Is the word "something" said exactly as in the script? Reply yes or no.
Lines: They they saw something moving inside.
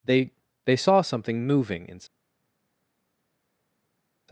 yes